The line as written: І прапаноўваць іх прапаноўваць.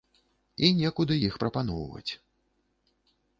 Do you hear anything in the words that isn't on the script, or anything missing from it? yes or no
yes